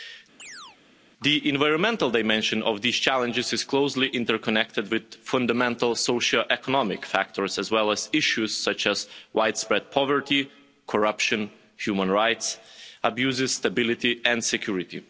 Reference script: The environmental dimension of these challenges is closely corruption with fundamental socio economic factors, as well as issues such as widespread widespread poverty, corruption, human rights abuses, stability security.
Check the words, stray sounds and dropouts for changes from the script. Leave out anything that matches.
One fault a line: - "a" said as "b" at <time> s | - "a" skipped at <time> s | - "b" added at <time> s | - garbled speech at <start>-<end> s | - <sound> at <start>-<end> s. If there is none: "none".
- chirp at 0.4-0.8 s
- "corruption" said as "interconnected" at 4.1 s
- "widespread" skipped at 9.9 s
- "and" added at 14.2 s